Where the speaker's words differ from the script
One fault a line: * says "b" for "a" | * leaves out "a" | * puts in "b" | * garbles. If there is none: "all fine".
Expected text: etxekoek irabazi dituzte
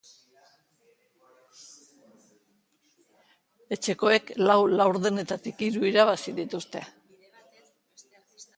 * puts in "lau laurdenetatik hiru"